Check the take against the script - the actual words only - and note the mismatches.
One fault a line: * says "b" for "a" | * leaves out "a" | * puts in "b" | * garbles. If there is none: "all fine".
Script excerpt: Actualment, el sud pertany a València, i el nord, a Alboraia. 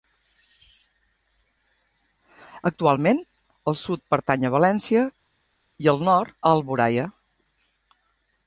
all fine